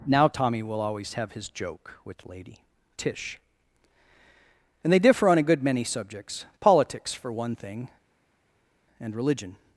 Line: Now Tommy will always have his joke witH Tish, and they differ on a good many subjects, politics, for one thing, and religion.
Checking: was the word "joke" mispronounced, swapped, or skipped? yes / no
no